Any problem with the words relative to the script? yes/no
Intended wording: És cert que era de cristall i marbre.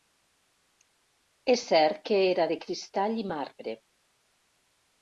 no